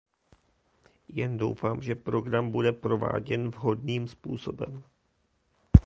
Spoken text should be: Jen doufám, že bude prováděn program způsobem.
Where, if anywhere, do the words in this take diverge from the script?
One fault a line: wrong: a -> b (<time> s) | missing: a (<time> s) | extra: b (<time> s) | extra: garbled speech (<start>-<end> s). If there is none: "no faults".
extra: program (2.0 s)
wrong: program -> vhodným (3.5 s)